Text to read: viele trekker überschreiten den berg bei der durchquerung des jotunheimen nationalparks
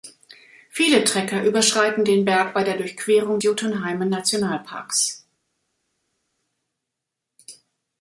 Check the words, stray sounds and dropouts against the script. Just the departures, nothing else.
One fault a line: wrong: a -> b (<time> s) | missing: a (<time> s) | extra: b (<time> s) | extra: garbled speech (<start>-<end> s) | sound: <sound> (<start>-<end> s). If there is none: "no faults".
missing: des (3.4 s)